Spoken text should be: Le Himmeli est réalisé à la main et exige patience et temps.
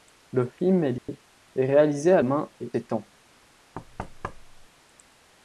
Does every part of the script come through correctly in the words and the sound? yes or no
no